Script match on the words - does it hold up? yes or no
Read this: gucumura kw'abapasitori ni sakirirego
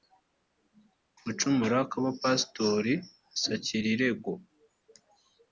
no